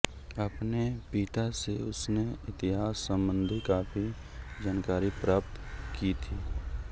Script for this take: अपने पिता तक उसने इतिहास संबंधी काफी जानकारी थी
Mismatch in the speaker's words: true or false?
true